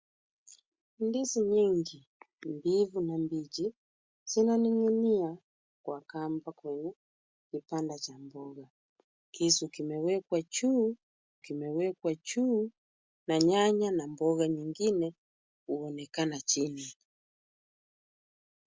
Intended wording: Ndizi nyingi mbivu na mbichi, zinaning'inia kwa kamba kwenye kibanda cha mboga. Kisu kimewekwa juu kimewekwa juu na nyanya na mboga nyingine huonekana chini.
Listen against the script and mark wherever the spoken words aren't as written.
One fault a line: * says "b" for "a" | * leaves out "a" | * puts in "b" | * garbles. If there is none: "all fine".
all fine